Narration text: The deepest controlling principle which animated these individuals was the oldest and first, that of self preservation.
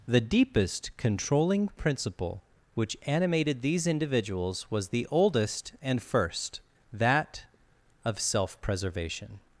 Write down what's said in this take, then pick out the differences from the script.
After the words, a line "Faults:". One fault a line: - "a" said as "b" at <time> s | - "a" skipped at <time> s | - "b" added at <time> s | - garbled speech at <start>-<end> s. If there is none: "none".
The deepest controlling principle which animated these individuals was the oldest and first, that of self preservation.
Faults:
none